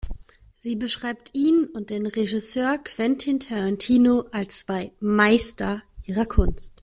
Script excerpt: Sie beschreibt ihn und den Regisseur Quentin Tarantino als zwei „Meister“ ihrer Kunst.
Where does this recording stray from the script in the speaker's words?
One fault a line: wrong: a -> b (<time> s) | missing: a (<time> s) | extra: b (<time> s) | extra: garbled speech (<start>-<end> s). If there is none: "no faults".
no faults